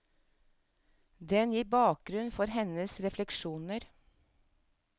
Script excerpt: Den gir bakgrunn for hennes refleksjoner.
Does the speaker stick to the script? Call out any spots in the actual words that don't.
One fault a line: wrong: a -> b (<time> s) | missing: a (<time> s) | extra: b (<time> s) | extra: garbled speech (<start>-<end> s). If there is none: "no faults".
no faults